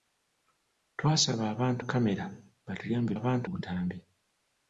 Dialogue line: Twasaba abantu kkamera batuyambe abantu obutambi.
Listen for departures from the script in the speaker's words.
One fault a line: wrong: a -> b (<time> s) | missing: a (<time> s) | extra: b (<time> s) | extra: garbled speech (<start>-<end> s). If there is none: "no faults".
no faults